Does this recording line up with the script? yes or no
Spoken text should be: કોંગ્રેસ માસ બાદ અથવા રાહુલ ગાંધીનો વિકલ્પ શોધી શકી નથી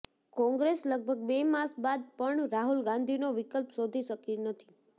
no